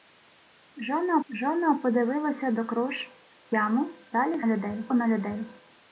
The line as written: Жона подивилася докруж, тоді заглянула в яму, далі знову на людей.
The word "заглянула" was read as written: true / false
false